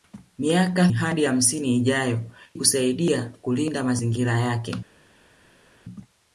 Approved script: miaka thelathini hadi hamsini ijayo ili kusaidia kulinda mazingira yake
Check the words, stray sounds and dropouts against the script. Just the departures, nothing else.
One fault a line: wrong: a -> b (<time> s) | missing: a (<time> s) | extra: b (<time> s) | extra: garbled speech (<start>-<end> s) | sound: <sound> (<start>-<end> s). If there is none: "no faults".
missing: thelathini (0.9 s)
missing: ili (2.2 s)